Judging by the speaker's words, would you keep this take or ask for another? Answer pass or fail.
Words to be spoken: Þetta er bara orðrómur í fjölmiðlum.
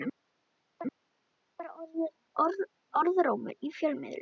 fail